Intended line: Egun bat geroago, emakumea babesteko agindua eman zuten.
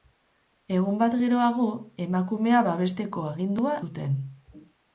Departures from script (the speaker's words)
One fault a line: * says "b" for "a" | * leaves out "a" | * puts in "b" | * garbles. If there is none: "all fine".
* leaves out "eman"